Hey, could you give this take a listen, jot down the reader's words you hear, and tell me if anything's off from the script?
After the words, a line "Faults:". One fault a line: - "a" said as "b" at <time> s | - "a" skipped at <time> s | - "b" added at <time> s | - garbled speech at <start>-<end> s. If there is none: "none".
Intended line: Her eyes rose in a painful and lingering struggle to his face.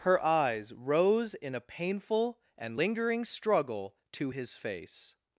Her eyes rose in a painful and lingering struggle to his face.
Faults:
none